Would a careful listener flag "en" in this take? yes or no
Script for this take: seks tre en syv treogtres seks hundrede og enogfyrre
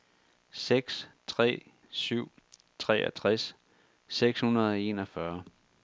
yes